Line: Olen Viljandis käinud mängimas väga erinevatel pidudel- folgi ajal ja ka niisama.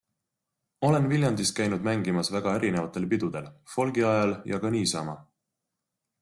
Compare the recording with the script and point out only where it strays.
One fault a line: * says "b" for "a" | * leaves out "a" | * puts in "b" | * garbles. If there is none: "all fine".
all fine